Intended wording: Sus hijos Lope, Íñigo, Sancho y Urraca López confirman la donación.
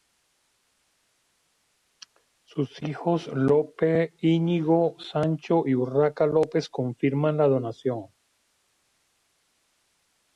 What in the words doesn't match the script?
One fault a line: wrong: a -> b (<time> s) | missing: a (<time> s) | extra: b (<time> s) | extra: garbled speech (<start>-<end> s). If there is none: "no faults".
no faults